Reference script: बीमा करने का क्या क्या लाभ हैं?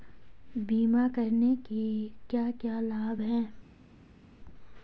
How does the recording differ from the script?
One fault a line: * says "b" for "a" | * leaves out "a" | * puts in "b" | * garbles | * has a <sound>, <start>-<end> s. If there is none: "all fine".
* says "के" for "का"